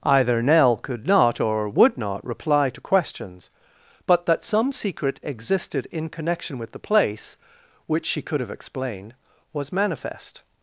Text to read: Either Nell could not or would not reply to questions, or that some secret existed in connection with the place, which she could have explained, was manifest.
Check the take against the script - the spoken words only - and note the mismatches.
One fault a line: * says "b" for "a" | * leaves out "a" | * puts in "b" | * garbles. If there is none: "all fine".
* says "but" for "or"